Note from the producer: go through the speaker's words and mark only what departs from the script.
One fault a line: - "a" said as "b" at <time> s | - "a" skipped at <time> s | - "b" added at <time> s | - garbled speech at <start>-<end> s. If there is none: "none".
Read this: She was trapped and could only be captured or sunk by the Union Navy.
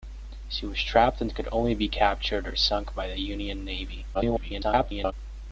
- garbled speech at 4.1-5.1 s